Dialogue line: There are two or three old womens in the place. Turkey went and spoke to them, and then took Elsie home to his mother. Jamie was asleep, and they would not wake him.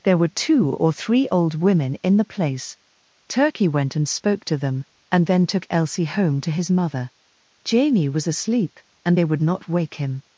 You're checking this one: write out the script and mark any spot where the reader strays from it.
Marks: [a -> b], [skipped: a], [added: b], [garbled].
There [are -> were] two or three old [womens -> women] in the place. Turkey went and spoke to them, and then took Elsie home to his mother. Jamie was asleep, and they would not wake him.